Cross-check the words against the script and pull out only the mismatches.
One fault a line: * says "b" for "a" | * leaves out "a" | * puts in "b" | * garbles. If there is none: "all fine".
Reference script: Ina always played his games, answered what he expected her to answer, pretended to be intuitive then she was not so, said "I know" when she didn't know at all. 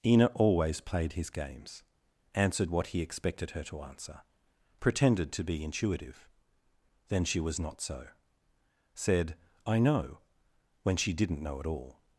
all fine